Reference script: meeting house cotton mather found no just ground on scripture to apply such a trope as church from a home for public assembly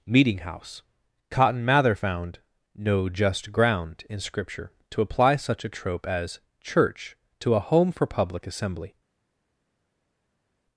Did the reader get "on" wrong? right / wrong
wrong